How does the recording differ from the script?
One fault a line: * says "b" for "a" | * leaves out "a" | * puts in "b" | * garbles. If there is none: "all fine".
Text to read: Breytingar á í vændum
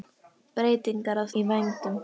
all fine